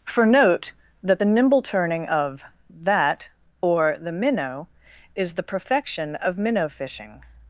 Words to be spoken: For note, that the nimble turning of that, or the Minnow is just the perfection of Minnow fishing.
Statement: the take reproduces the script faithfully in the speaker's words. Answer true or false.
false